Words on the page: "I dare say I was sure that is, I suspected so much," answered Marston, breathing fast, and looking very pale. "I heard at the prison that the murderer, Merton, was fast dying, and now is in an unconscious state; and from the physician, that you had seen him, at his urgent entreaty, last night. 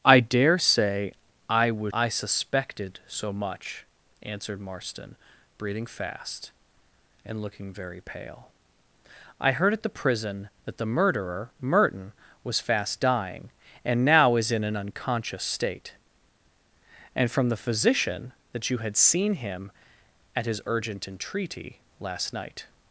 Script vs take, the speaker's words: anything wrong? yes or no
yes